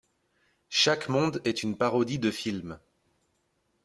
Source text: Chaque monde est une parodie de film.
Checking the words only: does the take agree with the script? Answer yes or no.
yes